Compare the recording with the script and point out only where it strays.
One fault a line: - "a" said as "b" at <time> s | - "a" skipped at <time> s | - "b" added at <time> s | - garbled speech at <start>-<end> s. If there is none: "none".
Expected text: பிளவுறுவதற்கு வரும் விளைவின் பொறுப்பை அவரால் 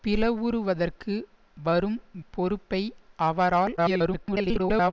- "விளைவின்" skipped at 2.0 s
- garbled speech at 3.8-4.9 s